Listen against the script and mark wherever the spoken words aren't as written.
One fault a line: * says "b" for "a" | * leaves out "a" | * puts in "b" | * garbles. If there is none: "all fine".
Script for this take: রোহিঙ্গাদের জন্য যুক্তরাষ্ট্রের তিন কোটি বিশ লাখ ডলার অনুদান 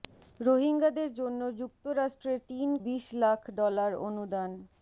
* leaves out "কোটি"